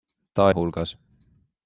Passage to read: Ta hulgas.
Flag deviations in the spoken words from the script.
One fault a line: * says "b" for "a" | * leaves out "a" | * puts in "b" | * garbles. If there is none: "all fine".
all fine